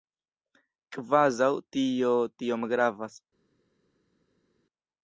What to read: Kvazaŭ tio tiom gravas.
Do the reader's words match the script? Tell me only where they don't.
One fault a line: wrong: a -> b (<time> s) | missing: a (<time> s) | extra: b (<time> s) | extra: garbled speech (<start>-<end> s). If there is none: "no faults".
no faults